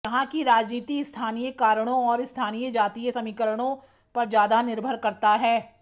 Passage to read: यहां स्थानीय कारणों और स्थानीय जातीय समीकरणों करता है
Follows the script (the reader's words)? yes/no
no